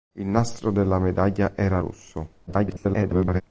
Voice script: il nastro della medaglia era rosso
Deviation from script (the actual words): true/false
true